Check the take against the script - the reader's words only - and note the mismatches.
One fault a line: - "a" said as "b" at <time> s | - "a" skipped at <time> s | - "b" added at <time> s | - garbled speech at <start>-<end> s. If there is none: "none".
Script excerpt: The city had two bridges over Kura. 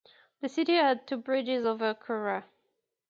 none